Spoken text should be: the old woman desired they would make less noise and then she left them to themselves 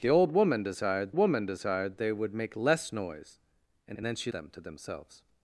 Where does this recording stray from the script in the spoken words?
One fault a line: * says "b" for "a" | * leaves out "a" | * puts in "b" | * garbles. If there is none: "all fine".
* puts in "woman desired"
* puts in "and"
* leaves out "left"